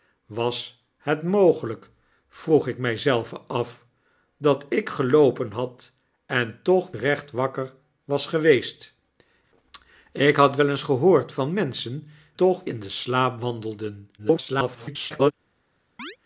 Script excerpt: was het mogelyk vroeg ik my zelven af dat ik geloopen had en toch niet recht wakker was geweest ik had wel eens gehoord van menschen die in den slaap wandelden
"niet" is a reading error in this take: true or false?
true